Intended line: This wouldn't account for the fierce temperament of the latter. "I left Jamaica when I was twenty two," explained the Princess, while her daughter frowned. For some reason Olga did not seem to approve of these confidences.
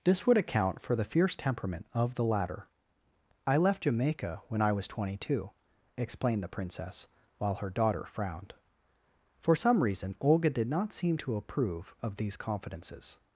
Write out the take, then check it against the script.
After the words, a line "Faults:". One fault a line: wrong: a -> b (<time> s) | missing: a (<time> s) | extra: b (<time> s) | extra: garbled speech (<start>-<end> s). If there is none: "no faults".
This would account for the fierce temperament of the latter. "I left Jamaica when I was twenty two," explained the Princess, while her daughter frowned. For some reason Olga did not seem to approve of these confidences.
Faults:
wrong: wouldn't -> would (0.2 s)